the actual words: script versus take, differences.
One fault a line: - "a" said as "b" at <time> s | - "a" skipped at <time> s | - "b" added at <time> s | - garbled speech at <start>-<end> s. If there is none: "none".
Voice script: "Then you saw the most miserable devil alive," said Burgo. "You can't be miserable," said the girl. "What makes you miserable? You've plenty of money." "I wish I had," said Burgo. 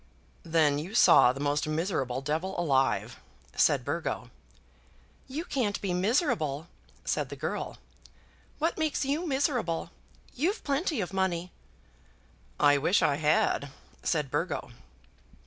none